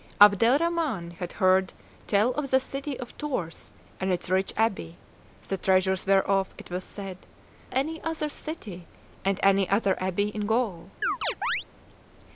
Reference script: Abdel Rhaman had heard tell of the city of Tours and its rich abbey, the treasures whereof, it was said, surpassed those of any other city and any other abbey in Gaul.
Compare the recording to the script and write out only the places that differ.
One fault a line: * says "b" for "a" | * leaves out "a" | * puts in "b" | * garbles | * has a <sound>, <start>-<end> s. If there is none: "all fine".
* leaves out "surpassed those of"
* has a chirp, 11.0-11.7 s